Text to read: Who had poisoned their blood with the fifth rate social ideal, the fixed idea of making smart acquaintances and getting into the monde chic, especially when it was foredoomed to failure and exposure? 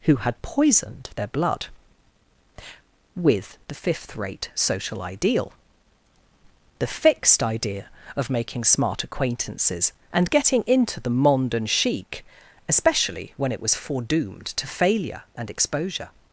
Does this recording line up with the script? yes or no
no